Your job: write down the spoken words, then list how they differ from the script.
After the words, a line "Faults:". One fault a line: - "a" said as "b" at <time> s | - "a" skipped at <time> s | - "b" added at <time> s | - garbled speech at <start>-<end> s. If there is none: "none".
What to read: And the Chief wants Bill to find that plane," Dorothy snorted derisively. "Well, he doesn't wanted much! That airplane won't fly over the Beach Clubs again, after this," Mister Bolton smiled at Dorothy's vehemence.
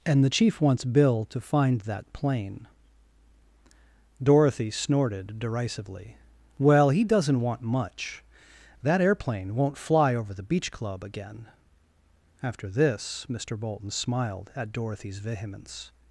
And the Chief wants Bill to find that plane," Dorothy snorted derisively. "Well, he doesn't want much! That airplane won't fly over the Beach Club again, after this," Mister Bolton smiled at Dorothy's vehemence.
Faults:
- "wanted" said as "want" at 7.4 s
- "Clubs" said as "Club" at 10.7 s